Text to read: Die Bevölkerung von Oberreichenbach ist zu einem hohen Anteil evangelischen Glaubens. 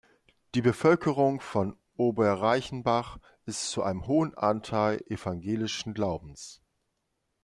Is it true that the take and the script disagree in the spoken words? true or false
false